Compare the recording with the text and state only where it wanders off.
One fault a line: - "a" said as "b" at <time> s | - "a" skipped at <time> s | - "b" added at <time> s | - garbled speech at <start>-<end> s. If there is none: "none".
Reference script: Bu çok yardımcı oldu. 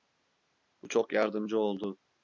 none